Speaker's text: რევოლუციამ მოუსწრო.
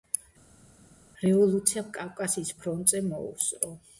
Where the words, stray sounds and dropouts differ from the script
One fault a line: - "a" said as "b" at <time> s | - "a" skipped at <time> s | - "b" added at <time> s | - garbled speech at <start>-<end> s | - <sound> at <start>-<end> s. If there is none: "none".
- "კავკასიის ფრონტზე" added at 2.0 s